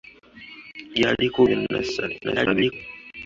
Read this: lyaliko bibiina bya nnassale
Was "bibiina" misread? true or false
true